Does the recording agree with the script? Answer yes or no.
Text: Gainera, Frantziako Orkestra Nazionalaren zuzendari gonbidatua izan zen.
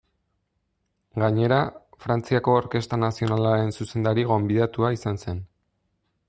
yes